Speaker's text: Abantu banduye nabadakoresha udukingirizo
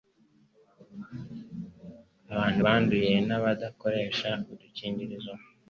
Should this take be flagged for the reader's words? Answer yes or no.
no